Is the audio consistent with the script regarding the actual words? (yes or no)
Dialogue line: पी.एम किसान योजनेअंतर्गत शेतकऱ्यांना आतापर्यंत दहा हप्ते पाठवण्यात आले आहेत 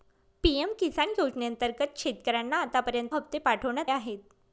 no